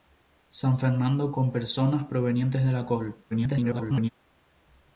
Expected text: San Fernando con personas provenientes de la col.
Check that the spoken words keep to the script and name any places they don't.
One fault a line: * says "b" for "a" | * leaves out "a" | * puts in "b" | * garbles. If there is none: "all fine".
* garbles